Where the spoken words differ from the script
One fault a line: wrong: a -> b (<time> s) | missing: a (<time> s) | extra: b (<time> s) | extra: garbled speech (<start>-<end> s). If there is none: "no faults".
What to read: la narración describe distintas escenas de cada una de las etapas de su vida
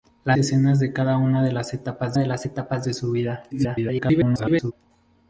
wrong: narración describe distintas escenas -> escenas de cada una (0.3 s)
wrong: cada una -> las etapas (1.5 s)
extra: garbled speech (3.5-4.7 s)